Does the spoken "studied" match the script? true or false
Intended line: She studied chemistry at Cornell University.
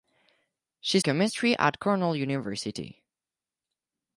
false